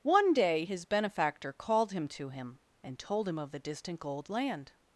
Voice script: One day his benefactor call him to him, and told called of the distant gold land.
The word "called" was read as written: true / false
false